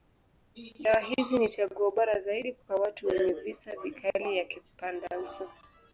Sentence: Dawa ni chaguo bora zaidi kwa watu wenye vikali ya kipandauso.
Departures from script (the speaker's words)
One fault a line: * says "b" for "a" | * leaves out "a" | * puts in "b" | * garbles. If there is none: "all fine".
* puts in "hizi"
* puts in "visa"